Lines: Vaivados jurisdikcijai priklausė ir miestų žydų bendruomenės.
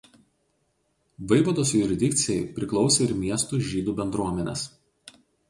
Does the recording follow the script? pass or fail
pass